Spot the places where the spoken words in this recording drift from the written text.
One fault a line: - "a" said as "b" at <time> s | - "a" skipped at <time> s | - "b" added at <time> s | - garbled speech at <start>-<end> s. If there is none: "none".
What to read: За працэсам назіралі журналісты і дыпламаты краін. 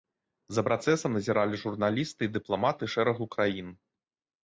- "шэрагу" added at 2.9 s